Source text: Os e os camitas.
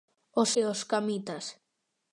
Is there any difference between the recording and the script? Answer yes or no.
no